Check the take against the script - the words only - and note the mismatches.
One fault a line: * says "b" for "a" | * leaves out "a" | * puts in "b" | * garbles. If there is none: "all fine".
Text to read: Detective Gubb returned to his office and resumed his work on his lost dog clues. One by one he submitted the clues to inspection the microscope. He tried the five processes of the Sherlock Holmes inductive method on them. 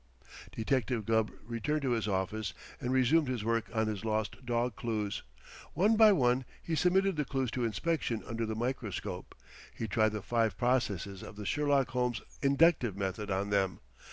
* puts in "under"